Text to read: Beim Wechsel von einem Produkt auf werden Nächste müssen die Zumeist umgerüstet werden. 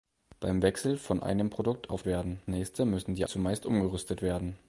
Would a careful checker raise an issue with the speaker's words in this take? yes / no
no